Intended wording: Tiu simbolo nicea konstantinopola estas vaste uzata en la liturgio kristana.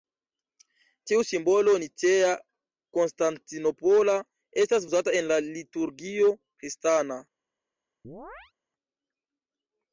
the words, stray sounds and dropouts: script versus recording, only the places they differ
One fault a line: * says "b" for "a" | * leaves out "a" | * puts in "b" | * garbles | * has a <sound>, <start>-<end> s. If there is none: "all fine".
* leaves out "vaste"
* has a chirp, 8.0-8.5 s